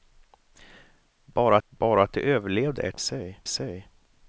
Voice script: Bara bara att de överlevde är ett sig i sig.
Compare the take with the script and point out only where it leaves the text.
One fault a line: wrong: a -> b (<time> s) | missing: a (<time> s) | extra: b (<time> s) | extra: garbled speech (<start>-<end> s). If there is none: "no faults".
no faults